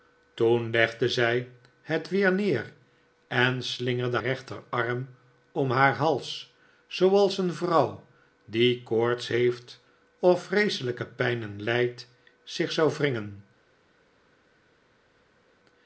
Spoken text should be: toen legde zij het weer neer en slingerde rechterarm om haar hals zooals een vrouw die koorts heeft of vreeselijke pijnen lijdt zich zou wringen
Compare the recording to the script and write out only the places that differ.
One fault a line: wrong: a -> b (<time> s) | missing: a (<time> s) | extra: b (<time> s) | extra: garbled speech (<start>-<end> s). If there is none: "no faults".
no faults